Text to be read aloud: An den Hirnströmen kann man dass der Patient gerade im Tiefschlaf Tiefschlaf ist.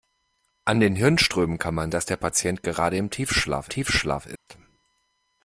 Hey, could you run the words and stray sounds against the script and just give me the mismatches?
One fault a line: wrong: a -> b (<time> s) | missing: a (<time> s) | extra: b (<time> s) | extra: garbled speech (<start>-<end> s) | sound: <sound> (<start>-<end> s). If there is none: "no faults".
sound: dropout (4.4-4.5 s)